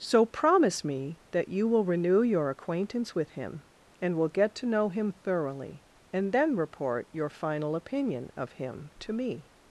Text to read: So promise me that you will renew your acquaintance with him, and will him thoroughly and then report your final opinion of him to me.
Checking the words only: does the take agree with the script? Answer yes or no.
no